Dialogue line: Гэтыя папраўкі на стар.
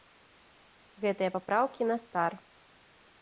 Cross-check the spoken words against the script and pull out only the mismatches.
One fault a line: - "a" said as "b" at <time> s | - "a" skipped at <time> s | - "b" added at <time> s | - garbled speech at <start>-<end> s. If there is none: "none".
none